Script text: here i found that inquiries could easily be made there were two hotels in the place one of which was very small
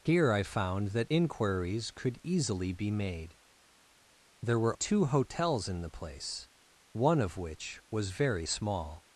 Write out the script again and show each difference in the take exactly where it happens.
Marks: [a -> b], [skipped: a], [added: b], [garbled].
here i found that inquiries could easily be made there were two hotels in the place one of which was very small